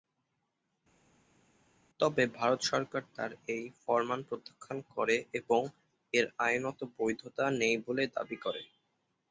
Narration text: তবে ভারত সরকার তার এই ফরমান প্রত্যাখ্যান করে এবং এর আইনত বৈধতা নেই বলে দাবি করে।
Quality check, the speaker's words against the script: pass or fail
pass